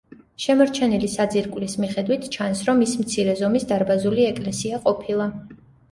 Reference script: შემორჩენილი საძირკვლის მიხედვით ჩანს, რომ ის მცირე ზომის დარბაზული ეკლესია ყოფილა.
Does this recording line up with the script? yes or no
yes